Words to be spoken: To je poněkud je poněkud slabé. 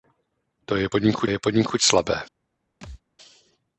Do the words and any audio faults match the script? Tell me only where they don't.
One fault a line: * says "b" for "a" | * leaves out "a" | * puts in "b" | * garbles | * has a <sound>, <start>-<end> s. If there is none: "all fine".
* has a thud, 2.8-3.0 s